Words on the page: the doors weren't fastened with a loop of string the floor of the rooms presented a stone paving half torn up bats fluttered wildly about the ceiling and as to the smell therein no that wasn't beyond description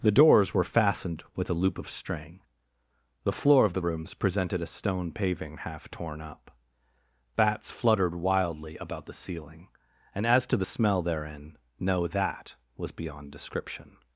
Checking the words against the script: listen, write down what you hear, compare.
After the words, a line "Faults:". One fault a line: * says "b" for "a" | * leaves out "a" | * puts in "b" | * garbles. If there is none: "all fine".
the doors were fastened with a loop of string the floor of the rooms presented a stone paving half torn up bats fluttered wildly about the ceiling and as to the smell therein no that was beyond description
Faults:
* says "were" for "weren't"
* says "was" for "wasn't"